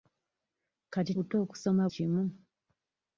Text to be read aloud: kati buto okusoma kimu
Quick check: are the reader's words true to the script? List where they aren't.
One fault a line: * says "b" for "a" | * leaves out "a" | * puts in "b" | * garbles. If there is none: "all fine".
all fine